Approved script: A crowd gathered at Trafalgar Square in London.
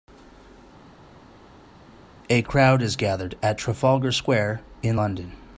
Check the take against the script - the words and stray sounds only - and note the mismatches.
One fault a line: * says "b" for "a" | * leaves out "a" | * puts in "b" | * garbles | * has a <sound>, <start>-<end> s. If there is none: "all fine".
* puts in "is"